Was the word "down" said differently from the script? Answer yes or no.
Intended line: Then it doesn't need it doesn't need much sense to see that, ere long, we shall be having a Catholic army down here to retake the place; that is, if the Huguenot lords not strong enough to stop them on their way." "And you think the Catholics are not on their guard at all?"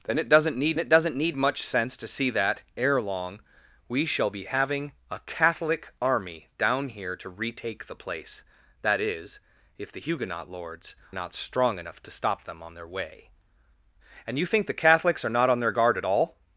no